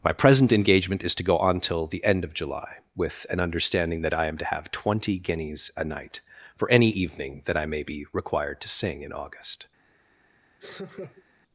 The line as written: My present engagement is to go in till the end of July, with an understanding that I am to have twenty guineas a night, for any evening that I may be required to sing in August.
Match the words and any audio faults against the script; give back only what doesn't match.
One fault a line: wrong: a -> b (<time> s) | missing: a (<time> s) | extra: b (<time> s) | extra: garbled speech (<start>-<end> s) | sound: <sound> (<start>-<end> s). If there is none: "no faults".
wrong: in -> on (1.4 s)
sound: laugh (10.6-11.2 s)